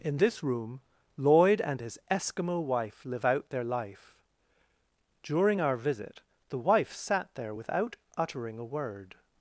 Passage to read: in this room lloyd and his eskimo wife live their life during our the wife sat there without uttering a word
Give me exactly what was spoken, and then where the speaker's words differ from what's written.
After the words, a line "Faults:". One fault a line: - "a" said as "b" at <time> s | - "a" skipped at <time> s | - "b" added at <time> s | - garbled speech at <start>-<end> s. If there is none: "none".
in this room lloyd and his eskimo wife live out their life during our visit the wife sat there without uttering a word
Faults:
- "out" added at 3.2 s
- "visit" added at 5.8 s